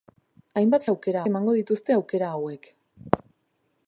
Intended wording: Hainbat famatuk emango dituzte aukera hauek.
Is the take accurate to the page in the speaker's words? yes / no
no